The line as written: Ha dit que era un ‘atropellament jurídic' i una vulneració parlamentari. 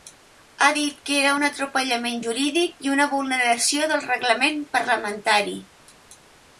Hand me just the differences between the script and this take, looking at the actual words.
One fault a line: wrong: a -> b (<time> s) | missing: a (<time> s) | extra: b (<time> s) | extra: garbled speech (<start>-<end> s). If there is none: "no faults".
extra: del reglament (3.9 s)